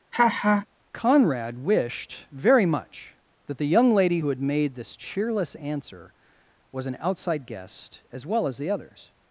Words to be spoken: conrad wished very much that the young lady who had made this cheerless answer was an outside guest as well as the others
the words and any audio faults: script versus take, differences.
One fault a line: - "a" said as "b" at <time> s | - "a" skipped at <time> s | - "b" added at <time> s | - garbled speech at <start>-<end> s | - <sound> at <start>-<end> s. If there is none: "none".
- laugh at 0.1-0.7 s